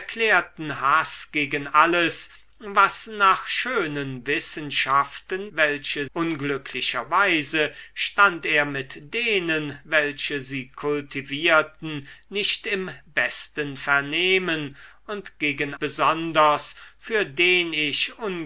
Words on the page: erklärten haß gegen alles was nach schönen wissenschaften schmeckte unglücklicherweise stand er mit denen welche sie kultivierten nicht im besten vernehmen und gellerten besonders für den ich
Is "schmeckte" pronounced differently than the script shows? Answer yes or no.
yes